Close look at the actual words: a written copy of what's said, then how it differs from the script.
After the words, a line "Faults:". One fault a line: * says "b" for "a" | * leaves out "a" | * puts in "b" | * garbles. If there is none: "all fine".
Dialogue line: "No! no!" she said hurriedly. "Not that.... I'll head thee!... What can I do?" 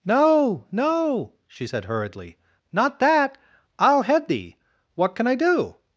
"No! no!" she said hurriedly. "Not that.... I'll head thee!... What can I do?"
Faults:
all fine